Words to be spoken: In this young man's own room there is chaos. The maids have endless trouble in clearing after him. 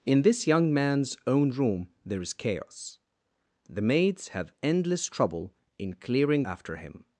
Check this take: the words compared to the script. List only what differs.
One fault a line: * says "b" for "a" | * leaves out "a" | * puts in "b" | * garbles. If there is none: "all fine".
all fine